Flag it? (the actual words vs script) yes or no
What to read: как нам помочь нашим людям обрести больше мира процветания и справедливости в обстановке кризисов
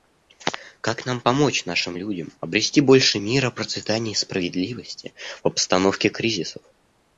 no